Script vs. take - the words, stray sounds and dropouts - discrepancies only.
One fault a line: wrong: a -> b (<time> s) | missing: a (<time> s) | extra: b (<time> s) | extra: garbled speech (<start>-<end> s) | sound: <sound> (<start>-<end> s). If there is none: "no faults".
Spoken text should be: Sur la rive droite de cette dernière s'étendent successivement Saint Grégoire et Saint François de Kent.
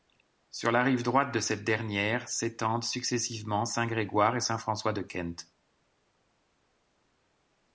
no faults